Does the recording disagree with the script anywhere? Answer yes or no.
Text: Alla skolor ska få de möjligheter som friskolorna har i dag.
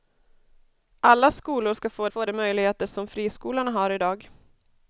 yes